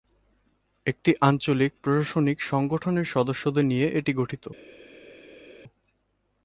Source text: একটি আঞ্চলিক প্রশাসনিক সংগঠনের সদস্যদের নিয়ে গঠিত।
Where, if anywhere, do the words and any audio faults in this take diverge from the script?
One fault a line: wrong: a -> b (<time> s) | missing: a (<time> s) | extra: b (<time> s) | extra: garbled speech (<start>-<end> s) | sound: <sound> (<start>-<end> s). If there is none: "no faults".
extra: এটি (4.0 s)